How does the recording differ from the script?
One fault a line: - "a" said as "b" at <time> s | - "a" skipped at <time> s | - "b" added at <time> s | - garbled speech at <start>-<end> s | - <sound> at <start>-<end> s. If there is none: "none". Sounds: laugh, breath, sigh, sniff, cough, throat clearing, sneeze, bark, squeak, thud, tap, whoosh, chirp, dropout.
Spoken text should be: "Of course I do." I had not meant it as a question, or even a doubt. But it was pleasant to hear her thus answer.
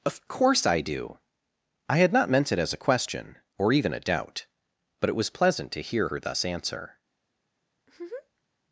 - laugh at 7.8-8.5 s